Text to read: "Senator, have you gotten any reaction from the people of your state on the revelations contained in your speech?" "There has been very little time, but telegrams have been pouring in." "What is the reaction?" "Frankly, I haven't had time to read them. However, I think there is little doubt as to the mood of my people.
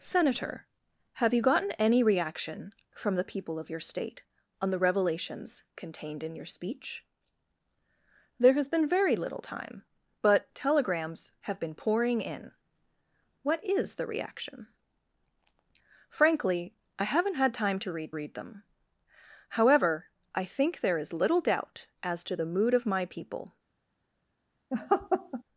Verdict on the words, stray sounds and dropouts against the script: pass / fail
fail